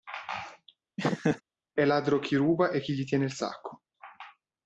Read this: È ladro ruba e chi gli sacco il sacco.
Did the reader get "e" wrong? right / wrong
right